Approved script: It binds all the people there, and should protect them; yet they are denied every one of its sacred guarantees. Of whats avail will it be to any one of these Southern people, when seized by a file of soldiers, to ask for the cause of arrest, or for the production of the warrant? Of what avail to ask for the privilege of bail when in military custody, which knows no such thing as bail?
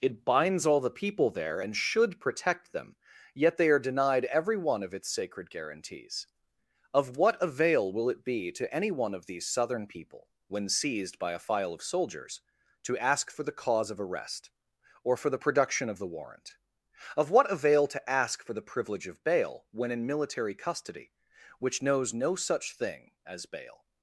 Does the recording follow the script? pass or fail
fail